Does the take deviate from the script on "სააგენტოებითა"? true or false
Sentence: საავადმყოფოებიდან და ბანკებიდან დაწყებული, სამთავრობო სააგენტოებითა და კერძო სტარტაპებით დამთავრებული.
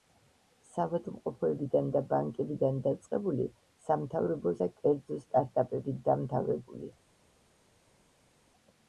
true